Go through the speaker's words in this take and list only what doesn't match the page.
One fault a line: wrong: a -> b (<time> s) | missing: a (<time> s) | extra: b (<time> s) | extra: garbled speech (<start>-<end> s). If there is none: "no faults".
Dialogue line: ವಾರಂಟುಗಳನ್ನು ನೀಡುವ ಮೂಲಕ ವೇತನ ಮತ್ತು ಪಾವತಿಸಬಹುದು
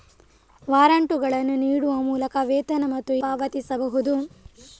no faults